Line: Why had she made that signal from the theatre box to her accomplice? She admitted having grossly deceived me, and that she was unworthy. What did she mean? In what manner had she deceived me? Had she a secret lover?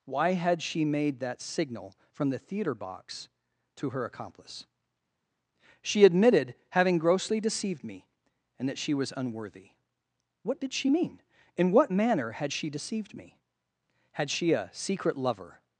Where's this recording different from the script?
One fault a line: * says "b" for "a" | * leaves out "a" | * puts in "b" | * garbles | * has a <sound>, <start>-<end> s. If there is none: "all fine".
all fine